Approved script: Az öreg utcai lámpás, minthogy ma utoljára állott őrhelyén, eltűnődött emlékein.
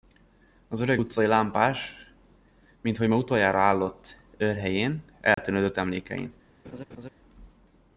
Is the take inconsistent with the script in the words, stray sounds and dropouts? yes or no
yes